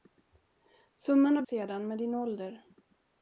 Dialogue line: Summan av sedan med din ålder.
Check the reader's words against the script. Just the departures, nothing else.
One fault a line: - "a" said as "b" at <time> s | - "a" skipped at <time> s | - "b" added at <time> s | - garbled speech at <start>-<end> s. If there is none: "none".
none